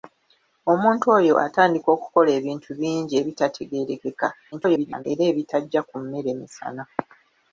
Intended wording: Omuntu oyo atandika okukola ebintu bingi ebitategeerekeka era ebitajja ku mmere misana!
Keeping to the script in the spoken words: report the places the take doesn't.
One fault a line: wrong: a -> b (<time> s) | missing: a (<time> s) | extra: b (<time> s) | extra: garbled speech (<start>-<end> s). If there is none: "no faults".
extra: garbled speech (4.5-5.0 s)